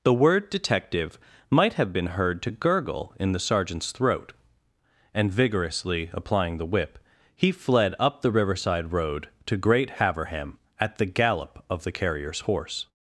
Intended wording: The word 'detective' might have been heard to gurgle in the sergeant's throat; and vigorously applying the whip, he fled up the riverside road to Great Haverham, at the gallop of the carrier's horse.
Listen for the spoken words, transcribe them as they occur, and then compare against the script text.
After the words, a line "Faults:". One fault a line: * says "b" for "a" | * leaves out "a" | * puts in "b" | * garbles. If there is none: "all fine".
The word 'detective' might have been heard to gurgle in the sergeant's throat; and vigorously applying the whip, he fled up the riverside road to Great Haverham, at the gallop of the carrier's horse.
Faults:
all fine